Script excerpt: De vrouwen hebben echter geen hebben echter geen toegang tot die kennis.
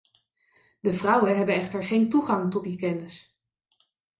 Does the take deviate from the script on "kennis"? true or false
false